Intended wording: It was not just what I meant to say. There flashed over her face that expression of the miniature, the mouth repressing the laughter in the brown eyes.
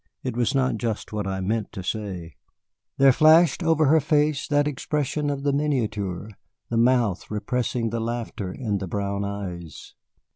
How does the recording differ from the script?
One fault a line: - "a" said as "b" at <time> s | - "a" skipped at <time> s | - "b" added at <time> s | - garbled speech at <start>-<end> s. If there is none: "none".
none